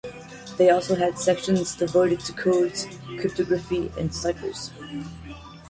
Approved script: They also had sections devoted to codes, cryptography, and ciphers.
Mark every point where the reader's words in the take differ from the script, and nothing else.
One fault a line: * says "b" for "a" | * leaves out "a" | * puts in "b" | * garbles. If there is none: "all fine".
all fine